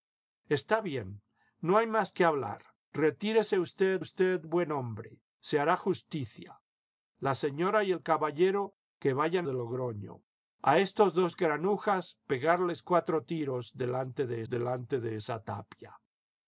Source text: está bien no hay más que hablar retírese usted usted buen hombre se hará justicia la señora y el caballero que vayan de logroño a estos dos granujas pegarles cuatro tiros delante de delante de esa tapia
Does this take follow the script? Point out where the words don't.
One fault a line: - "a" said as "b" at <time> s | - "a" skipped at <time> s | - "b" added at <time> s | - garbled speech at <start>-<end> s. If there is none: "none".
none